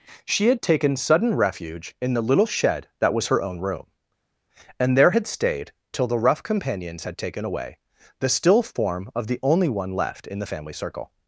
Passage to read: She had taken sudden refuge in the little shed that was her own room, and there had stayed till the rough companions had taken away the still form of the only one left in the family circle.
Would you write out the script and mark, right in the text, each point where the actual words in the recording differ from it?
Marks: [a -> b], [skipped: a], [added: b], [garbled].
She had taken sudden refuge in the little shed that was her own room, and there had stayed till the rough companions had taken away the still form of the only one left in the family circle.